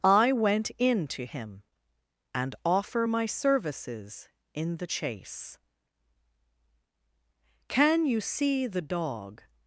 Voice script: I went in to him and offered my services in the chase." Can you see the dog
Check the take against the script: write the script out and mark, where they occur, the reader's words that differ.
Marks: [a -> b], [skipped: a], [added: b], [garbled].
I went in to him and [offered -> offer] my services in the chase." Can you see the dog